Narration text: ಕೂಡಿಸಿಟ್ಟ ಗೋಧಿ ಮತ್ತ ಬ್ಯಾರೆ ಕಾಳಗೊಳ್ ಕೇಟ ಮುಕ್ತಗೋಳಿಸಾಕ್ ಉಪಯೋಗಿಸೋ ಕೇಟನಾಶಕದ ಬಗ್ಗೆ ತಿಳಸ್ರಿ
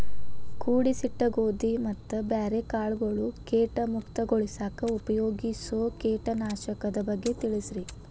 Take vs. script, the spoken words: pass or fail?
pass